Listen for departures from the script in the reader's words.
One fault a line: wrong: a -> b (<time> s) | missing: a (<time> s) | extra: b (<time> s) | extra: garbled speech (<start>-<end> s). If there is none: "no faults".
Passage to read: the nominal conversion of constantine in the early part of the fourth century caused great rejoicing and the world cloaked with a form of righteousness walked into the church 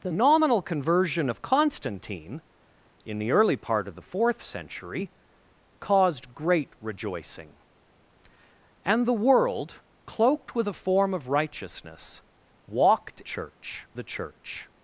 wrong: into -> church (13.2 s)